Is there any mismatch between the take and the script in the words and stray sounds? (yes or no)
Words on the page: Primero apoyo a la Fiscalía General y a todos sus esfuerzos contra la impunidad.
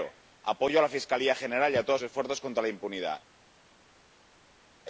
yes